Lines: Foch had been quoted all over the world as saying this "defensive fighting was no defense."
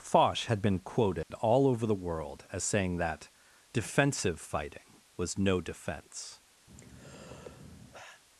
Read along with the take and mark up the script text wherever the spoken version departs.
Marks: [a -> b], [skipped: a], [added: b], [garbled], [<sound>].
Foch had been quoted [dropout] all over the world as saying [this -> that] "defensive fighting was no defense." [sigh]